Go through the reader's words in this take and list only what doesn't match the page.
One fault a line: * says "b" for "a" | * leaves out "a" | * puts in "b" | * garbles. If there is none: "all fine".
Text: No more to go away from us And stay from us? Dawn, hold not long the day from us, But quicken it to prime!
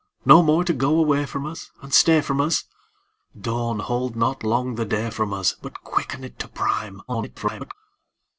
* garbles